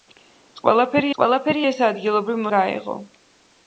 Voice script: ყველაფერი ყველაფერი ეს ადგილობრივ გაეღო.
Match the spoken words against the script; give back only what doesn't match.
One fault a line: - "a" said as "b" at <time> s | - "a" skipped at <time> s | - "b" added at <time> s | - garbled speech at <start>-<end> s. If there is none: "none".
none